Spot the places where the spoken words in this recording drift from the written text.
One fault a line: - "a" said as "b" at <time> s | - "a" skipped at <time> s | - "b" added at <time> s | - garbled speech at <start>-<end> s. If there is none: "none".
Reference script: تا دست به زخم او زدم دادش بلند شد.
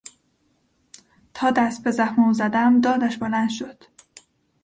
none